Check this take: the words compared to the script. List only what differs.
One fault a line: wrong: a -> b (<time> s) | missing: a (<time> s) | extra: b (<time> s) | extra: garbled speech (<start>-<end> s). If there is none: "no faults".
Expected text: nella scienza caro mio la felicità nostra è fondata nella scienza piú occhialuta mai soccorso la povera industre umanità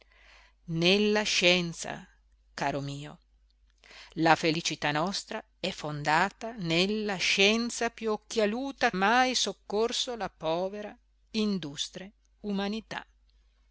no faults